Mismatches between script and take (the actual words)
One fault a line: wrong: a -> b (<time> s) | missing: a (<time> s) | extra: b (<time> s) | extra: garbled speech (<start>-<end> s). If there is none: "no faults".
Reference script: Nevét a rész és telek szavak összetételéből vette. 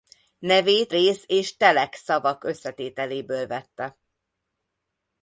missing: a (0.9 s)